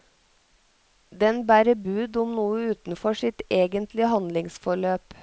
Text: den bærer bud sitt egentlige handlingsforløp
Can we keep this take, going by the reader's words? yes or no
no